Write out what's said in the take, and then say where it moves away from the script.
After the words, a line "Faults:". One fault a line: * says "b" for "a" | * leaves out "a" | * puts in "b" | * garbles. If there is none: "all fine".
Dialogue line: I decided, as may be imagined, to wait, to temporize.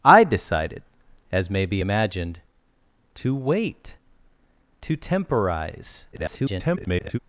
I decided, as may be imagined, to wait, to temporize. [garbled]
Faults:
* garbles